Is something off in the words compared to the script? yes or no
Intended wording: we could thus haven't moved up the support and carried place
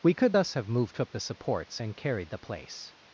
yes